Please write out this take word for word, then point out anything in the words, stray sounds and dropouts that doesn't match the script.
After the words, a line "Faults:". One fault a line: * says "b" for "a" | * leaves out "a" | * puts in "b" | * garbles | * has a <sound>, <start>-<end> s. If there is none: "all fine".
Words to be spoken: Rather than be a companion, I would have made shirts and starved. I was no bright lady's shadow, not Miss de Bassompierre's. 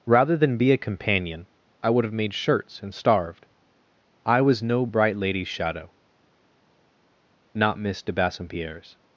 Rather than be a companion, I would have made shirts and starved. I was no bright lady's shadow, not Miss de Bassompierre's.
Faults:
all fine